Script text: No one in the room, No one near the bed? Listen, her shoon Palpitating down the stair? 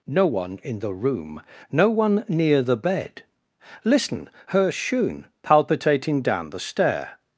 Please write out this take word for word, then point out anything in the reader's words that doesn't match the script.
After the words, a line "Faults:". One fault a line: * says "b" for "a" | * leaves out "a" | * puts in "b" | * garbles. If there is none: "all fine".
No one in the room, No one near the bed? Listen, her shoon Palpitating down the stair?
Faults:
all fine